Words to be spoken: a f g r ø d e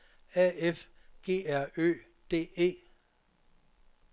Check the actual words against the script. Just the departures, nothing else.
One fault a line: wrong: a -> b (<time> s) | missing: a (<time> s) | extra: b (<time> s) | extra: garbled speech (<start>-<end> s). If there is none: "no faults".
no faults